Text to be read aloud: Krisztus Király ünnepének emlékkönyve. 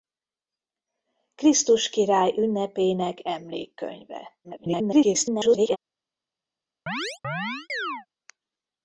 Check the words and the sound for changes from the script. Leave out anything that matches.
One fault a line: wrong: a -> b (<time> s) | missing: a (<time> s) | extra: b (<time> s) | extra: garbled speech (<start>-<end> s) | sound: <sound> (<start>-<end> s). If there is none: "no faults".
extra: garbled speech (4.4-5.8 s)
sound: chirp (6.9-8.1 s)